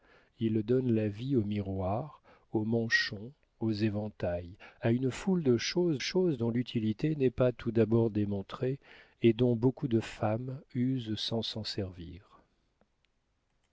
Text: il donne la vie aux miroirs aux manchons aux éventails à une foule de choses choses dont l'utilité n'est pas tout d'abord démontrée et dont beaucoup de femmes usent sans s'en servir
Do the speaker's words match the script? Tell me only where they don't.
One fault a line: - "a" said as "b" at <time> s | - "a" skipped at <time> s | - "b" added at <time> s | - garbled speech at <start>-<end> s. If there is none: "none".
none